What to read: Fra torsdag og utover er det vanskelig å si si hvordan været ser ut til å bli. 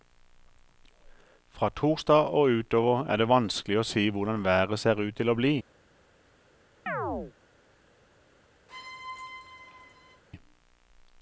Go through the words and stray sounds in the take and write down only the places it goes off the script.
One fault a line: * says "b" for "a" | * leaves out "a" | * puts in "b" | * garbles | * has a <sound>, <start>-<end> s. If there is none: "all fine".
* leaves out "si"
* has a chirp, 6.9-7.3 s
* has a squeak, 8.7-10.2 s